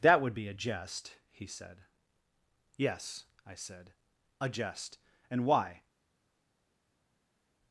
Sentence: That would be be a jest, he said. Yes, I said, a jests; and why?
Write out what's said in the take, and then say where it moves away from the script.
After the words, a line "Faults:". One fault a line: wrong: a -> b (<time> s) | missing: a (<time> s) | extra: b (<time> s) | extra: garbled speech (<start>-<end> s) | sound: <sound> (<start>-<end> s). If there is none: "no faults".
That would be a jest, he said. Yes, I said, a jest; and why?
Faults:
missing: be (0.5 s)
wrong: jests -> jest (4.5 s)